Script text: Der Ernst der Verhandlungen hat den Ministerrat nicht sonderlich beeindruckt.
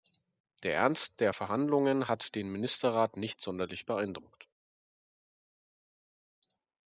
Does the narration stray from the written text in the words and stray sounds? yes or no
no